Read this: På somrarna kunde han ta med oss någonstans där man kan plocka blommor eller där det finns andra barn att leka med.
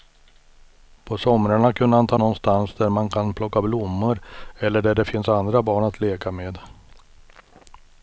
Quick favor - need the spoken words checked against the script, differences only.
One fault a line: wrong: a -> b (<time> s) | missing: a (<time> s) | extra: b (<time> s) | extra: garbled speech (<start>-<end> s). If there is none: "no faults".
missing: med oss (2.2 s)